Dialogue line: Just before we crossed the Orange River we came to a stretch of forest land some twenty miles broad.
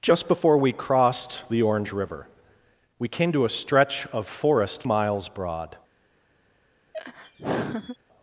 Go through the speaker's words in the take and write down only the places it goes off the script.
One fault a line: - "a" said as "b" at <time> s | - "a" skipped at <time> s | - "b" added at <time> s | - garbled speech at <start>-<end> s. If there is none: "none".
- "land some twenty" skipped at 4.9 s